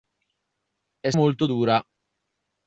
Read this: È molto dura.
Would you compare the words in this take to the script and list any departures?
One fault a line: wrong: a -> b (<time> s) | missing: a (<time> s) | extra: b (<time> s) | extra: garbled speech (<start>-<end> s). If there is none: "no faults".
no faults